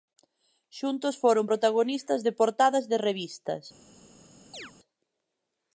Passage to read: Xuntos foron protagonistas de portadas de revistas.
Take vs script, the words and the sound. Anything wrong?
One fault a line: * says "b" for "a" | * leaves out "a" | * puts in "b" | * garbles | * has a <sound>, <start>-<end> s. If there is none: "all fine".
* has a chirp, 4.5-4.7 s